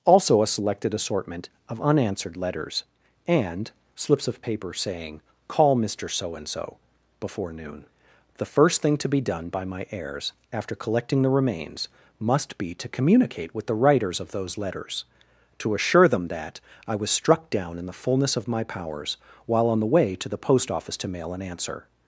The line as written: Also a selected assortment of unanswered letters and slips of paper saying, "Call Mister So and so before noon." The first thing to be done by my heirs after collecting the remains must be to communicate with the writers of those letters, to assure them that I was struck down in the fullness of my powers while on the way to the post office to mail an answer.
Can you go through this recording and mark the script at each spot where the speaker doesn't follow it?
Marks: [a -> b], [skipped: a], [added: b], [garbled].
Also a selected assortment of unanswered letters and slips of paper saying, "Call Mister So and so before noon." The first thing to be done by my heirs after collecting the remains must be to communicate with the writers of those letters, to assure them that I was struck down in the fullness of my powers while on the way to the post office to mail an answer.